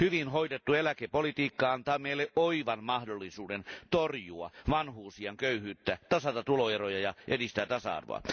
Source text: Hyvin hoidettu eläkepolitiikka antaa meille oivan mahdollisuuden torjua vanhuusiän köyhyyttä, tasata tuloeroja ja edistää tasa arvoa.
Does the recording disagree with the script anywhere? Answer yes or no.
no